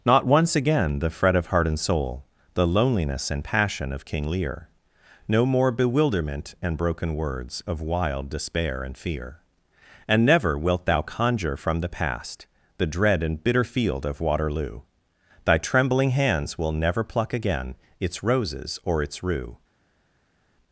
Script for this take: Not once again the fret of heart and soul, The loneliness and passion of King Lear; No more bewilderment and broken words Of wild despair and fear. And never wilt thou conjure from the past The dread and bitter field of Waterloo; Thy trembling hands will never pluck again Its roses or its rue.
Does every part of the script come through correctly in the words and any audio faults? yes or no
yes